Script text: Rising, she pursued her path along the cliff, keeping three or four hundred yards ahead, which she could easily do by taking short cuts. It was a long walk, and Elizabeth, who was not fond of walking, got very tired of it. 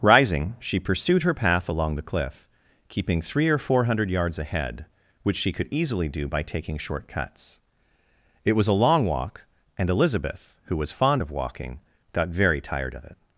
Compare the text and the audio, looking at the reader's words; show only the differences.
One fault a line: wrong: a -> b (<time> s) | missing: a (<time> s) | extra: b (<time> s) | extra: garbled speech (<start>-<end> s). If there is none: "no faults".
missing: not (10.9 s)